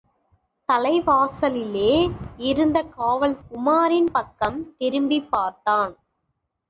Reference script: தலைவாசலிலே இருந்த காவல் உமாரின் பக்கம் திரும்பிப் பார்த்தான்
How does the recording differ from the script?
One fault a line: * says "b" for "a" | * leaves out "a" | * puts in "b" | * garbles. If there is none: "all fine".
all fine